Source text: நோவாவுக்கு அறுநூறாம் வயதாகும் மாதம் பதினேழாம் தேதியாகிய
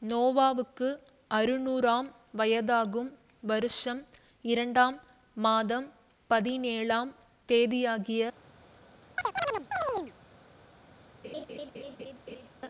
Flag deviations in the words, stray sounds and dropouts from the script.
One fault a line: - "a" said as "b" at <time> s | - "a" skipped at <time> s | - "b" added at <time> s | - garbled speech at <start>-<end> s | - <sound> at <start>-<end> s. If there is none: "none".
- "வருஷம் இரண்டாம்" added at 3.4 s
- chirp at 9.2-10.1 s
- laugh at 11.2-12.5 s